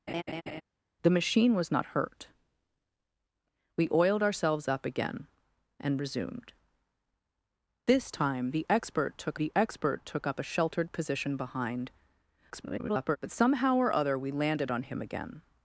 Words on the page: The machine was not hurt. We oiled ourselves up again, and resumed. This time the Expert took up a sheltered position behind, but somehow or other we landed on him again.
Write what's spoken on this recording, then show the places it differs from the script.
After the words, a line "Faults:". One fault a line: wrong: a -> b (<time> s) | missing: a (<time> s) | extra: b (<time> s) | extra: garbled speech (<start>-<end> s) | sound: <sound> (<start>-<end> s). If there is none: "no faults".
The machine was not hurt. We oiled ourselves up again, and resumed. This time the Expert took the Expert took up a sheltered position behind, [garbled] but somehow or other we landed on him again.
Faults:
sound: laugh (0.1-0.6 s)
extra: the Expert took (9.3 s)
extra: garbled speech (12.5-13.2 s)